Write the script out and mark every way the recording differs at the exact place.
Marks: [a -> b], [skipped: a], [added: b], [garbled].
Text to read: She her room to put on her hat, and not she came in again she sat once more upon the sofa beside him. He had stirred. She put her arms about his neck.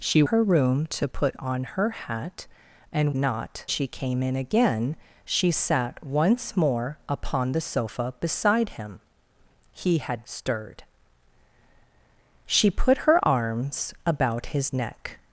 She her room to put on her hat, and not she came in again she sat once more upon the sofa beside him. He had stirred. She put her arms about his neck.